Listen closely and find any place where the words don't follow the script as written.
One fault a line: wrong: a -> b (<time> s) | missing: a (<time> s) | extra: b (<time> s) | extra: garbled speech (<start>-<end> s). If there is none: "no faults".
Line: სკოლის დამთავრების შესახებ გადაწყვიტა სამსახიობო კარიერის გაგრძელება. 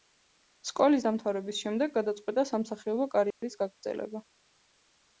wrong: შესახებ -> შემდეგ (1.6 s)